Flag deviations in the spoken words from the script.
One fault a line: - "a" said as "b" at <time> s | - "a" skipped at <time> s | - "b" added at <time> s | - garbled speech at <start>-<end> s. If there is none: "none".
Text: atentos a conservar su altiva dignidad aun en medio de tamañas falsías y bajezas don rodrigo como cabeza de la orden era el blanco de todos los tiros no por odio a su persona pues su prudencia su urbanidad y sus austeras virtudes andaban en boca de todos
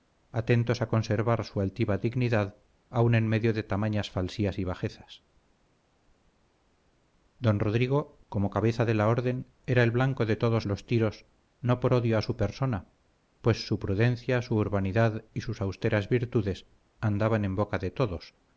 none